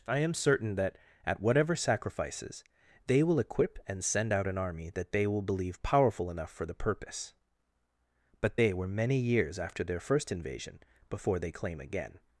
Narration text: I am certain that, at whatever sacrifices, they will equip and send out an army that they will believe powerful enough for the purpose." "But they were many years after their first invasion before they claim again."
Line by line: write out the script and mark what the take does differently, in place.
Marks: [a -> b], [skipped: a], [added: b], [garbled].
I am certain that, at whatever sacrifices, they will equip and send out an army that they will believe powerful enough for the purpose." "But they were many years after their first invasion before they claim again."